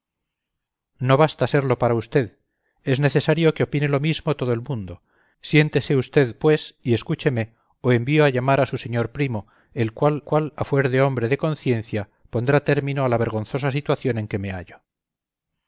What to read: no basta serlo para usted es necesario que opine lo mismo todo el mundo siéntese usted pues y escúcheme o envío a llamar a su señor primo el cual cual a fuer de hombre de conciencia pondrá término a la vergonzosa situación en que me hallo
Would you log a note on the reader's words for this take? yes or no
no